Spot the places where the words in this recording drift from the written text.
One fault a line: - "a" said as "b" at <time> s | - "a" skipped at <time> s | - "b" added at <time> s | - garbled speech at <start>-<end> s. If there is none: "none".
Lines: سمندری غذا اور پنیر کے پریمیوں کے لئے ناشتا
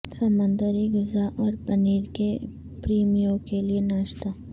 none